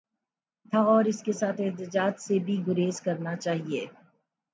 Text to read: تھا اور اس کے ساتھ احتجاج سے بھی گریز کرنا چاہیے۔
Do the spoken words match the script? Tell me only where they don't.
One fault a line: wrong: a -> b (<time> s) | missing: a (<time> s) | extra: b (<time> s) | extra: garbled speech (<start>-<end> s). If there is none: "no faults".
no faults